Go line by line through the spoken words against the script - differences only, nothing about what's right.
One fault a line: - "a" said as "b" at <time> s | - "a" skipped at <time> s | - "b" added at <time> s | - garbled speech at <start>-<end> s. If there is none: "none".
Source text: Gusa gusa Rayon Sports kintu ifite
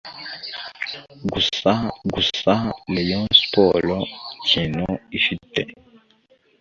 none